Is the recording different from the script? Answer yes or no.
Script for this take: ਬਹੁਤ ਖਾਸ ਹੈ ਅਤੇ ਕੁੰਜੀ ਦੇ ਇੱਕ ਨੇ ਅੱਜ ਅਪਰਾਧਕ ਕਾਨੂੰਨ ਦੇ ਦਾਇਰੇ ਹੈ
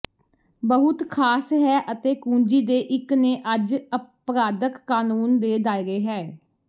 no